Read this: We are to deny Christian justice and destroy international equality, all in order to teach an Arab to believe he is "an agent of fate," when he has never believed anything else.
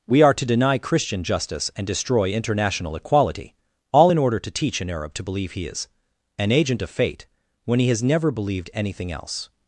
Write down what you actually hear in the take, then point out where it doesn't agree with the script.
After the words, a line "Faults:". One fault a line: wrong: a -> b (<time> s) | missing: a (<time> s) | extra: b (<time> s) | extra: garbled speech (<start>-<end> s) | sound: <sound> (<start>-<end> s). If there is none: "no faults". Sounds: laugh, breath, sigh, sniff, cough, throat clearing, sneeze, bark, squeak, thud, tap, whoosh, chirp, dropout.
We are to deny Christian justice and destroy international equality, all in order to teach an Arab to believe he is "an agent of fate," when he has never believed anything else.
Faults:
no faults